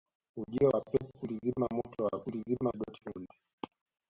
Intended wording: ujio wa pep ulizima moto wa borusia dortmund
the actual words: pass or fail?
fail